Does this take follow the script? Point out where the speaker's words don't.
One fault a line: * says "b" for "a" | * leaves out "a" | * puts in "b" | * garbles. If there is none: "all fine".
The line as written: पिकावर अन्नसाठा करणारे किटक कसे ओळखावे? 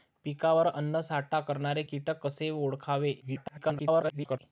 * garbles